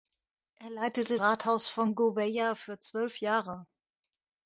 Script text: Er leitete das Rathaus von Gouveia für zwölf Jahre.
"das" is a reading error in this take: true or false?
true